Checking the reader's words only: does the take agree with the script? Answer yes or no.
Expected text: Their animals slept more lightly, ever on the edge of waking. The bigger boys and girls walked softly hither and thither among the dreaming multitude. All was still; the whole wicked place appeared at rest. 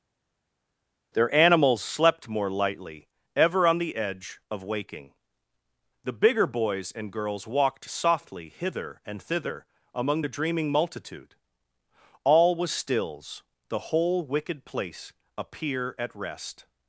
no